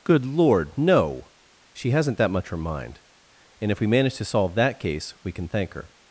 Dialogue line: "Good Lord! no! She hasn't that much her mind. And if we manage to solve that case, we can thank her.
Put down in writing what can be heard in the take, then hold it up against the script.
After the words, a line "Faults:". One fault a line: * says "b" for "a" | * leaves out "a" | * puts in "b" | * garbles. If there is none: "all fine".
"Good Lord! no! She hasn't that much her mind. And if we manage to solve that case, we can thank her.
Faults:
all fine